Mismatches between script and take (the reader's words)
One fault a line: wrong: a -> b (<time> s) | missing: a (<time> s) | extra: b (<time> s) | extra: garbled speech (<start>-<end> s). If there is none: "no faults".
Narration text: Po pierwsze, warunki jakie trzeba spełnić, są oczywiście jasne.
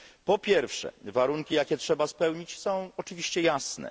no faults